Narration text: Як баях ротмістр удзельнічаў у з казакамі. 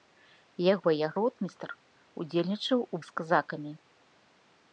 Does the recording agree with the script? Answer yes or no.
yes